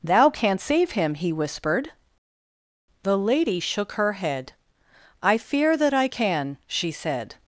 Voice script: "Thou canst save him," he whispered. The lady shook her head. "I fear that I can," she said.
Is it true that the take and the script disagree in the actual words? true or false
false